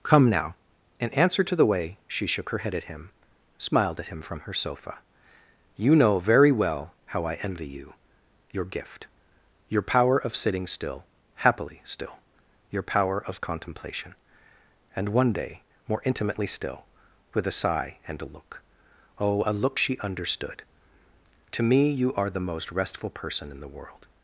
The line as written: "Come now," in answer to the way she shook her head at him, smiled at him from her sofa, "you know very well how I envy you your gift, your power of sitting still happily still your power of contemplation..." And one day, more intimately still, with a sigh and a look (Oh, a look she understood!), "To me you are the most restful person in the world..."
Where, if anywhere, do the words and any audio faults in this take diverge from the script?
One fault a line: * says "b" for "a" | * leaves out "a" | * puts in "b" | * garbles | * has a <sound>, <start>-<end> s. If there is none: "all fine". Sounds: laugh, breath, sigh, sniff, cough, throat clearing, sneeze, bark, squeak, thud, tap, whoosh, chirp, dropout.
all fine